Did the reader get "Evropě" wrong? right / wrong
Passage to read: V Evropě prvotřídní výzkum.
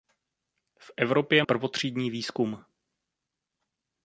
right